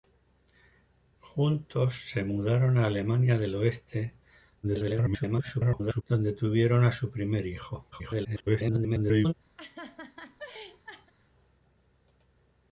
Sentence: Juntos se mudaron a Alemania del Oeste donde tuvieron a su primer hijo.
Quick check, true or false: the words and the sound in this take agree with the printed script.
false